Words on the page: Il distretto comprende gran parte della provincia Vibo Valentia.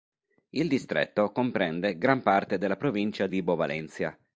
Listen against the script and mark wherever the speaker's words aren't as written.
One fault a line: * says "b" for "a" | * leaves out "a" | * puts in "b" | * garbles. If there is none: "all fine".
all fine